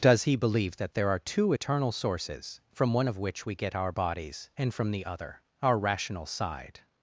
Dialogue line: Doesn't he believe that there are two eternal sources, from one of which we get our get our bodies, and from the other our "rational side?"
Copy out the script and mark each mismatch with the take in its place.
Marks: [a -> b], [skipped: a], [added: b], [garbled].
[Doesn't -> Does] he believe that there are two eternal sources, from one of which we get our [skipped: get our] bodies, and from the other our "rational side?"